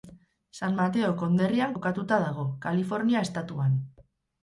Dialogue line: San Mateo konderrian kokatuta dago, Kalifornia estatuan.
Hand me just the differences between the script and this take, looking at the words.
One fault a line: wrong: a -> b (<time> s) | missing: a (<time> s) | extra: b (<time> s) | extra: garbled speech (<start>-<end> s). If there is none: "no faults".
no faults